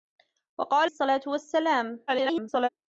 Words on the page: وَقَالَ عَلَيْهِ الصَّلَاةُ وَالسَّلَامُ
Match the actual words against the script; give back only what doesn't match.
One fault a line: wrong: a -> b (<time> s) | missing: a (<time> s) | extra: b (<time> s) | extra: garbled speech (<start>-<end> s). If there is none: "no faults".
missing: عَلَيْهِ (0.9 s)
extra: garbled speech (2.1-2.7 s)